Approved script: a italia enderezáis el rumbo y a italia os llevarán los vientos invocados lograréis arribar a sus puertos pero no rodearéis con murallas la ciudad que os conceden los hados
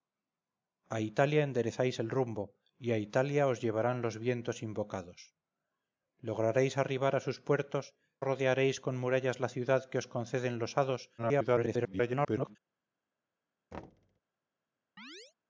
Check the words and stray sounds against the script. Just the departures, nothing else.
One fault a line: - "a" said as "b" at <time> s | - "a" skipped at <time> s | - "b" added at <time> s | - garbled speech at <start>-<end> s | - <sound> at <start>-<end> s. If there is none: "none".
- "pero no" skipped at 8.0 s
- garbled speech at 11.2-12.6 s
- thud at 13.7-14.2 s
- chirp at 15.0-15.3 s